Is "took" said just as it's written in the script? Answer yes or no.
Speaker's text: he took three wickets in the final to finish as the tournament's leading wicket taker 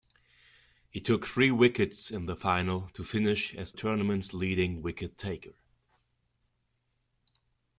yes